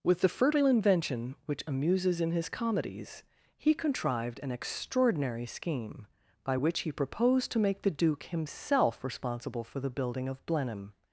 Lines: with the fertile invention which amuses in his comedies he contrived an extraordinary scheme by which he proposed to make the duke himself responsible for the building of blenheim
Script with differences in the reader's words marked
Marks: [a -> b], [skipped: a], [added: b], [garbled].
with the fertile invention which amuses in his comedies he contrived an extraordinary scheme by which he proposed to make the duke himself responsible for the building of blenheim